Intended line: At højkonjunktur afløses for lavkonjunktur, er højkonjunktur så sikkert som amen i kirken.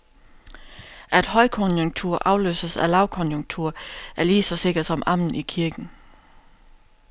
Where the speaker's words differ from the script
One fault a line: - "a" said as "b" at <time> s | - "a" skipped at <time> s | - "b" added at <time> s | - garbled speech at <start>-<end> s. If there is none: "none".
- "for" said as "af" at 2.8 s
- "højkonjunktur" said as "lige" at 4.2 s